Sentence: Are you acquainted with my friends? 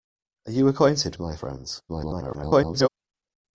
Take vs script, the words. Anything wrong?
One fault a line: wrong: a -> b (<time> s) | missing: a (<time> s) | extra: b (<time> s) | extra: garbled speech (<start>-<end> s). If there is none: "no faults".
missing: with (1.1 s)
extra: garbled speech (1.9-2.9 s)